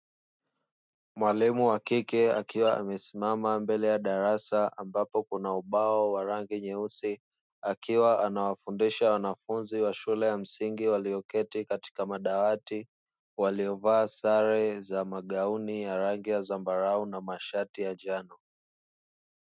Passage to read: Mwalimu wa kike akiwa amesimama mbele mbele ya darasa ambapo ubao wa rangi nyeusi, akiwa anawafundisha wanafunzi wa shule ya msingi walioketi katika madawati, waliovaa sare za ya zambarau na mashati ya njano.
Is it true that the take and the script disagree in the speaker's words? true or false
true